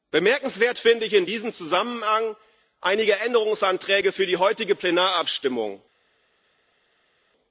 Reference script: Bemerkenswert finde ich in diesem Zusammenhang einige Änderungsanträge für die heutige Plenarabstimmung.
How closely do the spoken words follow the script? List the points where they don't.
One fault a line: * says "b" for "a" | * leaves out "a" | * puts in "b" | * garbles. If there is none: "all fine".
all fine